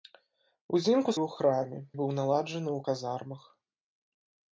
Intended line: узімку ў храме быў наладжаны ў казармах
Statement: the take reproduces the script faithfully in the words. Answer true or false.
true